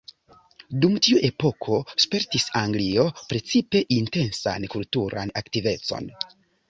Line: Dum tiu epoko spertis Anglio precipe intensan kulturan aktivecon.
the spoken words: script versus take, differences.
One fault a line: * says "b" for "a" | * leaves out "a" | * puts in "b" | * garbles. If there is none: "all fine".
all fine